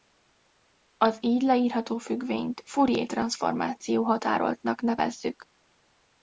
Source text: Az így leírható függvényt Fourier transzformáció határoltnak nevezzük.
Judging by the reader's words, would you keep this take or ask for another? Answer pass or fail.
pass